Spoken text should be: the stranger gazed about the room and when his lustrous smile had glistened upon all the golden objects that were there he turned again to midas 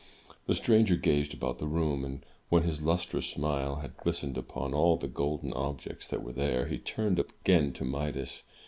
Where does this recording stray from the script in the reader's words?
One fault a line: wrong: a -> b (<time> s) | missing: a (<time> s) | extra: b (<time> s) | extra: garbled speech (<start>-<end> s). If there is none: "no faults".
no faults